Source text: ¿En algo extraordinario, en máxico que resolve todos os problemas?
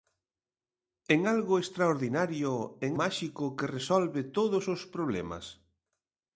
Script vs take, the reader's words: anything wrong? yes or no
no